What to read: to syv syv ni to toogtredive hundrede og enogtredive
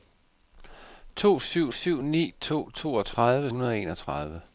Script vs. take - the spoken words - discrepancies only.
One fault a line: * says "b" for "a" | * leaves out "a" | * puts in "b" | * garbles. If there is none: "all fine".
all fine